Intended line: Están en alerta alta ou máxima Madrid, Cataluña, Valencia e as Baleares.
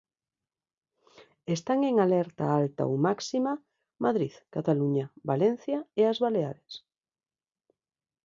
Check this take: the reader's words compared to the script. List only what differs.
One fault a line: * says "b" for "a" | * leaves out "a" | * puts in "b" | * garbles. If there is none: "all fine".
all fine